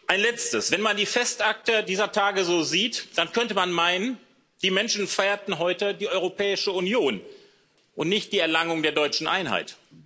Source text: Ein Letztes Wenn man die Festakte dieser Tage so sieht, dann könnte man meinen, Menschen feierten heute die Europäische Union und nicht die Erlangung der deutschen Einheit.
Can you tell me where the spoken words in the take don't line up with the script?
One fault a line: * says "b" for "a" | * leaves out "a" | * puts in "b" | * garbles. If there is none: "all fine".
* puts in "die"